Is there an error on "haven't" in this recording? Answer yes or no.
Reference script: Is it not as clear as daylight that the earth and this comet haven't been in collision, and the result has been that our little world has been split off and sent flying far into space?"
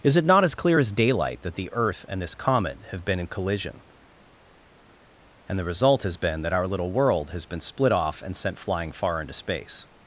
yes